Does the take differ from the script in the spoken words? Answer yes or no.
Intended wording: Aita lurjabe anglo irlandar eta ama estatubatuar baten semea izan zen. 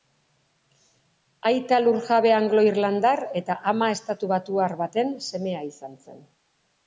no